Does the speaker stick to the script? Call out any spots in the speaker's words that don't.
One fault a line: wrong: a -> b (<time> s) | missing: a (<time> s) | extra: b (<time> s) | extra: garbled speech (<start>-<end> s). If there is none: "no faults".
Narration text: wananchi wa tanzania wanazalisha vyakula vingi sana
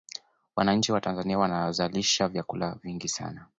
no faults